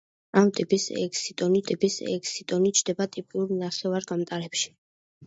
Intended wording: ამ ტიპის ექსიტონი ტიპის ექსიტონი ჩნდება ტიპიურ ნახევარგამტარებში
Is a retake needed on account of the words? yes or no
no